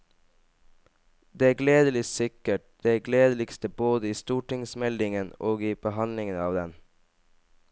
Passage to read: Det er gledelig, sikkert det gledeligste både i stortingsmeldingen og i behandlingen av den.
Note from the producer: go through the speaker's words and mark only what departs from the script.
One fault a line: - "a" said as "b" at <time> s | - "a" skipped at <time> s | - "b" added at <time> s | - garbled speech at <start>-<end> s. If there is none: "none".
none